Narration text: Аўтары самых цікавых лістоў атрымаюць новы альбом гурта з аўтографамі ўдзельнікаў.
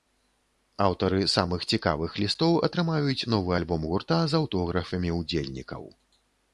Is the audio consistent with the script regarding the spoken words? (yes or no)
yes